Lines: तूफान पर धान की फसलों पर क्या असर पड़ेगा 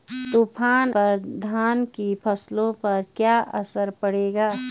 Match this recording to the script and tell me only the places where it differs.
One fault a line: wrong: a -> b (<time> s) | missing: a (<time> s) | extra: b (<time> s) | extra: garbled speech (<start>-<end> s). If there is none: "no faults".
no faults